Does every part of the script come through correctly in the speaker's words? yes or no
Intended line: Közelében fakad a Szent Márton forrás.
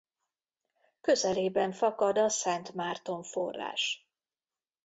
yes